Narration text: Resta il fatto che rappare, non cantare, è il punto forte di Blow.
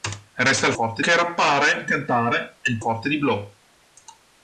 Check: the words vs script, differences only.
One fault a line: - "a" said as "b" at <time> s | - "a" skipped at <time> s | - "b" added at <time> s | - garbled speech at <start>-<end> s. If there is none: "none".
- "fatto" said as "forte" at 0.7 s
- "non" skipped at 1.9 s
- "punto" skipped at 2.8 s